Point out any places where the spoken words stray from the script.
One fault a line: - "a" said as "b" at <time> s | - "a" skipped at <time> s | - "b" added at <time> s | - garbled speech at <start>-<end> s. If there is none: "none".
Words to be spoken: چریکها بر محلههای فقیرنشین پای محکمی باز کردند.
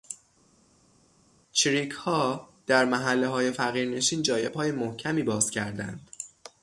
- "بر" said as "در" at 2.7 s
- "جای" added at 4.2 s